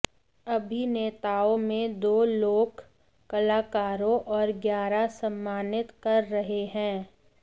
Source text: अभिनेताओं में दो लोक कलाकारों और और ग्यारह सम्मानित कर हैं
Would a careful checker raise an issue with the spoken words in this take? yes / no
yes